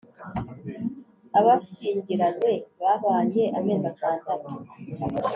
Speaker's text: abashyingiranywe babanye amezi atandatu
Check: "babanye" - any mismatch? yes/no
no